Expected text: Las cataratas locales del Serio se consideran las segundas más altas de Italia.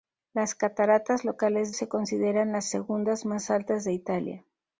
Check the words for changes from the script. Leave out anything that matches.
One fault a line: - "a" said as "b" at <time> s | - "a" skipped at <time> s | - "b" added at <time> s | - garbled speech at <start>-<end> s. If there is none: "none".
- "del Serio" skipped at 1.8 s